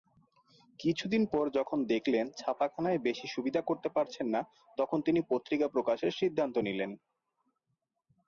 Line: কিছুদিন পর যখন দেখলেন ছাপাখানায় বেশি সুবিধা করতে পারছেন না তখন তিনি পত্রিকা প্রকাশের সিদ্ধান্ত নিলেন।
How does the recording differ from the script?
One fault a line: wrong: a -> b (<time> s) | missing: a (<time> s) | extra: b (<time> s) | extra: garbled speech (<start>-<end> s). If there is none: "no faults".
no faults